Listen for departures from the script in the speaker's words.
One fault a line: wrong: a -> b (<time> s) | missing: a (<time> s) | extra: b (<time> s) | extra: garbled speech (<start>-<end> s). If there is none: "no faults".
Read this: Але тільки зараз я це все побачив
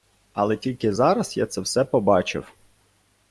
no faults